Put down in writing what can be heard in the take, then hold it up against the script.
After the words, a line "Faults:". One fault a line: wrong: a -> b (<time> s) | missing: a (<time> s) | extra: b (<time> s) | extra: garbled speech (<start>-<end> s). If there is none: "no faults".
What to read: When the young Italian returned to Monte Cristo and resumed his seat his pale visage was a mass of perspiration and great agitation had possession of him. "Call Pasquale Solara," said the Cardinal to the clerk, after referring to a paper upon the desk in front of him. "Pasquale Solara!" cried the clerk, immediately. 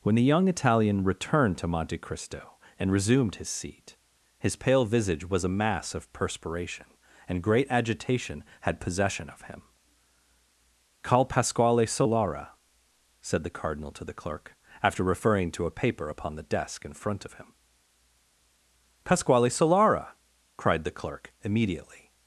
When the young Italian returned to Monte Cristo and resumed his seat his pale visage was a mass of perspiration and great agitation had possession of him. "Call Pasquale Solara," said the Cardinal to the clerk, after referring to a paper upon the desk in front of him. "Pasquale Solara!" cried the clerk, immediately.
Faults:
no faults